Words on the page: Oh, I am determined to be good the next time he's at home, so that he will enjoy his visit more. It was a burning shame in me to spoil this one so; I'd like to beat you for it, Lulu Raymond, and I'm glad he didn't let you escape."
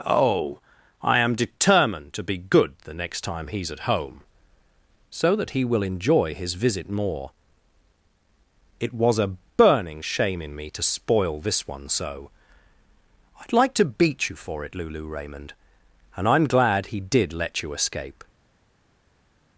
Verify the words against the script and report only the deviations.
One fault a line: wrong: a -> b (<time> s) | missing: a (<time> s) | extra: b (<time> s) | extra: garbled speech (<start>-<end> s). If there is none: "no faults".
wrong: didn't -> did (17.0 s)